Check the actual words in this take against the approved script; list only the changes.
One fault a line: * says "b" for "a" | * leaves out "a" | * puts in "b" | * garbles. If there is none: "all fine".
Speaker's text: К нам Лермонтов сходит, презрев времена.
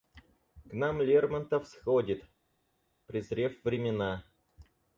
all fine